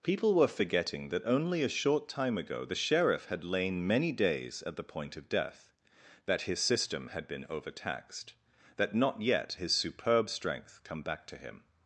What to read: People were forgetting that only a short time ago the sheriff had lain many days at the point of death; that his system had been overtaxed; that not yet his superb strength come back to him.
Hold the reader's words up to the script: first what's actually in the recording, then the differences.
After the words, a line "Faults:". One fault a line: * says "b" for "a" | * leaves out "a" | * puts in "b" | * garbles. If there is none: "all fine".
People were forgetting that only a short time ago the sheriff had lain many days at the point of death; that his system had been overtaxed; that not yet his superb strength come back to him.
Faults:
all fine